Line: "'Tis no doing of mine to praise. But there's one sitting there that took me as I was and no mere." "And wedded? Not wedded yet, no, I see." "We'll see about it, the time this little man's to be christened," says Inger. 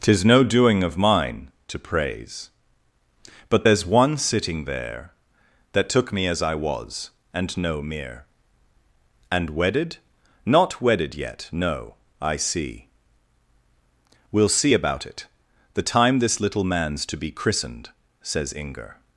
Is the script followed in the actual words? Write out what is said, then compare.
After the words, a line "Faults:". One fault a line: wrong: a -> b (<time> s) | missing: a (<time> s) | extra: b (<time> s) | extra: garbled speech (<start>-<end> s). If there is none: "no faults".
"'Tis no doing of mine to praise. But there's one sitting there that took me as I was and no mere." "And wedded? Not wedded yet, no, I see." "We'll see about it, the time this little man's to be christened," says Inger.
Faults:
no faults